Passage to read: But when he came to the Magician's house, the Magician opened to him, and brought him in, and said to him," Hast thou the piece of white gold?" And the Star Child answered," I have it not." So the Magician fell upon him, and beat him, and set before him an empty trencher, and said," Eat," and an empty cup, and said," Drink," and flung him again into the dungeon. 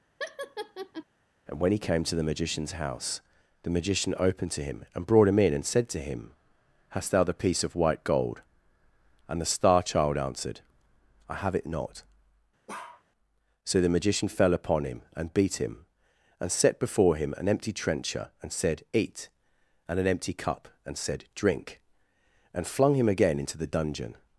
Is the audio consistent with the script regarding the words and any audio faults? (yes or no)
no